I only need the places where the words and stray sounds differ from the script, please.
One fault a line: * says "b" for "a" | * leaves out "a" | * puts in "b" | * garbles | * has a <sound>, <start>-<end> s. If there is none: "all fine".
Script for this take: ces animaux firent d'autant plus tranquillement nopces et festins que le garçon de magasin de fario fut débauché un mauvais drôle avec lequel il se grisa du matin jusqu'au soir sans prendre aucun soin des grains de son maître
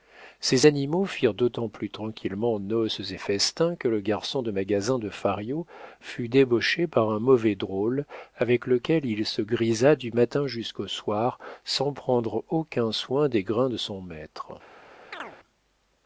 * puts in "par"
* has a chirp, 15.1-15.4 s